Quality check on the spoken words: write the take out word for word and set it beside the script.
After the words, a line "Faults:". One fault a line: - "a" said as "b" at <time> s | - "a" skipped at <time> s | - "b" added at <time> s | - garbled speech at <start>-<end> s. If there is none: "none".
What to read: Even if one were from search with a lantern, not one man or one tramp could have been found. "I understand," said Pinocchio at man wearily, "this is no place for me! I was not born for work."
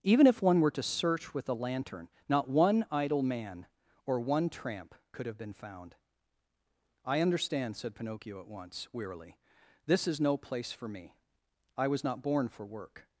Even if one were to search with a lantern, not one idle man or one tramp could have been found. "I understand," said Pinocchio at once wearily, "this is no place for me! I was not born for work."
Faults:
- "from" said as "to" at 0.7 s
- "idle" added at 2.9 s
- "man" said as "once" at 8.5 s